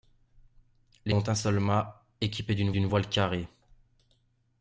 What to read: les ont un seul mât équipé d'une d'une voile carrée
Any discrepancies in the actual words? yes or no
no